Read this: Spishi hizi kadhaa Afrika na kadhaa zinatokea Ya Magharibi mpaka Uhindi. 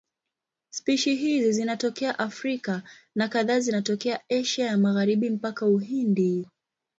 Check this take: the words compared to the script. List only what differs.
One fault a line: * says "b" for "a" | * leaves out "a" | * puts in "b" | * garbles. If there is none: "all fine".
* says "zinatokea" for "kadhaa"
* puts in "Asia"